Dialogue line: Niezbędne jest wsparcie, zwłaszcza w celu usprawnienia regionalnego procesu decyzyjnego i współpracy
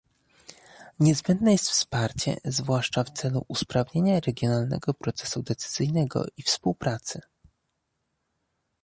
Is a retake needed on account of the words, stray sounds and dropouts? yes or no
no